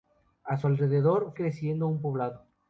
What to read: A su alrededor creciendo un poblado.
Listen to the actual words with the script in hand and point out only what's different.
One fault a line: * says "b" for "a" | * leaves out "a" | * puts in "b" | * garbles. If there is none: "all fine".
all fine